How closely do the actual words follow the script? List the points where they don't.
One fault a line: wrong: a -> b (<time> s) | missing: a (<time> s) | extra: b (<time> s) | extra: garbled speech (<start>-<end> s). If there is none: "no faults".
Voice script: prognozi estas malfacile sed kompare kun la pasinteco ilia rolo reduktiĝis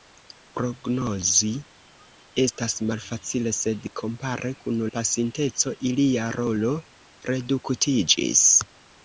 missing: la (4.8 s)